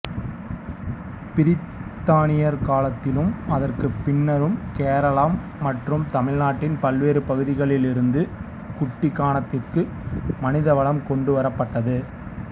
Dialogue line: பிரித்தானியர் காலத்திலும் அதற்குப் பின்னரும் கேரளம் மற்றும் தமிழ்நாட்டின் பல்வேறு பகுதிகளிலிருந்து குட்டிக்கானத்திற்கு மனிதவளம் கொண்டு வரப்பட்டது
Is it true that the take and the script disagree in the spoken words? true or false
false